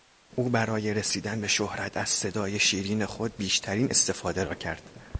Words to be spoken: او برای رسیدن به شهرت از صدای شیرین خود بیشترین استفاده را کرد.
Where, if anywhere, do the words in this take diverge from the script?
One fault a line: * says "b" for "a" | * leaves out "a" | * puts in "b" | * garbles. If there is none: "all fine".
all fine